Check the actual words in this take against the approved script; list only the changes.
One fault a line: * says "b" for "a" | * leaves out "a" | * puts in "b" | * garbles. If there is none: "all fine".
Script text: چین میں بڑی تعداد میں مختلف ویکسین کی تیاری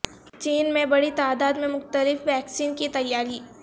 all fine